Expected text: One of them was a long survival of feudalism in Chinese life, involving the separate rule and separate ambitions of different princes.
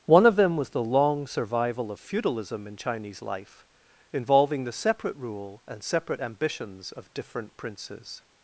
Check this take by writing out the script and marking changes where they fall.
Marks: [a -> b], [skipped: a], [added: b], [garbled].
One of them was [a -> the] long survival of feudalism in Chinese life, involving the separate rule and separate ambitions of different princes.